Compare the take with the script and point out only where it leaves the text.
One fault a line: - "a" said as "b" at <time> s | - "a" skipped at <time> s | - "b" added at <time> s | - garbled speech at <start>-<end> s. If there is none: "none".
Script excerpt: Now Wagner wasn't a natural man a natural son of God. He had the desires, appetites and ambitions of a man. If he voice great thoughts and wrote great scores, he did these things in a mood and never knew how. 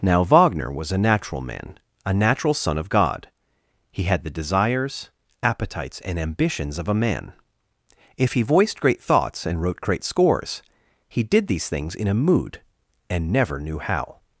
- "wasn't" said as "was" at 0.7 s
- "voice" said as "voiced" at 8.4 s